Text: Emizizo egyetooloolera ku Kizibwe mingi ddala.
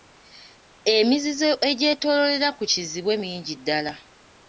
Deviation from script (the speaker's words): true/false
false